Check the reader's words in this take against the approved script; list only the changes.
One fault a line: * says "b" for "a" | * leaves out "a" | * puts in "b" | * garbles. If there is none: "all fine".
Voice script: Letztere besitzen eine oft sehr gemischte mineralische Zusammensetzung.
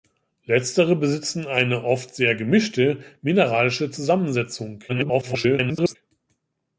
* garbles